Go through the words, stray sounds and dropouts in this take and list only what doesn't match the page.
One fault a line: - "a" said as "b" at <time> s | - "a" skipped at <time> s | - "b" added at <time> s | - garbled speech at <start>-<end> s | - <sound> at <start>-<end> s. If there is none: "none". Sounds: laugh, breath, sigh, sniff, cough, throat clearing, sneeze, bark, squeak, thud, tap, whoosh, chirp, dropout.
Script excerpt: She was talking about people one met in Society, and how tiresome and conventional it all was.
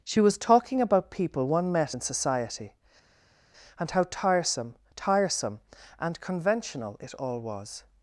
- "tiresome" added at 4.9 s